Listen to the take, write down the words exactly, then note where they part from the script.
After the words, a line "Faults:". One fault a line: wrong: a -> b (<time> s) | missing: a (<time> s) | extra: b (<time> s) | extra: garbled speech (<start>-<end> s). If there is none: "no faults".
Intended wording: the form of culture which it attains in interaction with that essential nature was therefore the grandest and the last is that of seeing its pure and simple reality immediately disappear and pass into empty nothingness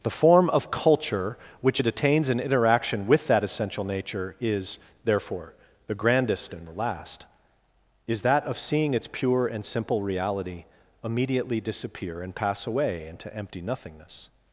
the form of culture which it attains in interaction with that essential nature is therefore the grandest and the last is that of seeing its pure and simple reality immediately disappear and pass away into empty nothingness
Faults:
wrong: was -> is (4.4 s)
extra: away (12.7 s)